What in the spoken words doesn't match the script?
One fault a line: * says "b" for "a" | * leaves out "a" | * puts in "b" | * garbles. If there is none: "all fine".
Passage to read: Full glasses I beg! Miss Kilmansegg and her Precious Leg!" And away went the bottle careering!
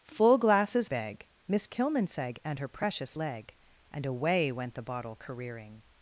* leaves out "I"